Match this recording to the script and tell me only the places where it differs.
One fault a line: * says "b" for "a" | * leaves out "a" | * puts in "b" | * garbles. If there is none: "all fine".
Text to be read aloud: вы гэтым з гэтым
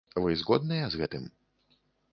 * says "згодныя" for "гэтым"